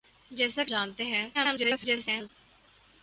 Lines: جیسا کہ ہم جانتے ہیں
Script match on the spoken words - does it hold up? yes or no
no